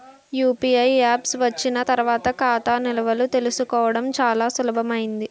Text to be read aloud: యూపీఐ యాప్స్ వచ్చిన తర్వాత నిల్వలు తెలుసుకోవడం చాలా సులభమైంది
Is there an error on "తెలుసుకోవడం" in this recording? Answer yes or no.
no